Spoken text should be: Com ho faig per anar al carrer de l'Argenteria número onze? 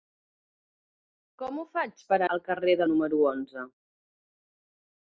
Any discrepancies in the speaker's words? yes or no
yes